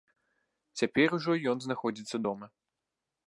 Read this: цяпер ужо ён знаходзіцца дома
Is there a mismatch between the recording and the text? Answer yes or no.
no